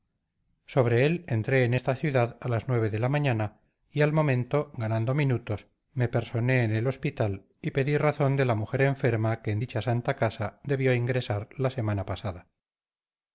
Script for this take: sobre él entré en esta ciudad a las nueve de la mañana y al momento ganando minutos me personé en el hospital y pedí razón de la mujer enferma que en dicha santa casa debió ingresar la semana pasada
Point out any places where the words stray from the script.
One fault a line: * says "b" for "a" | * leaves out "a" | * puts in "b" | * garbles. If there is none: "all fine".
all fine